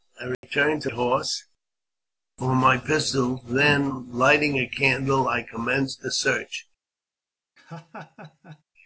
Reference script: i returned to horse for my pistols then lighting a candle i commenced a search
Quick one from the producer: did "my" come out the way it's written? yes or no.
yes